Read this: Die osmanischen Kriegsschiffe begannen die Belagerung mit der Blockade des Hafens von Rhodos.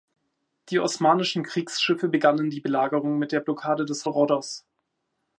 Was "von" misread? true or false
true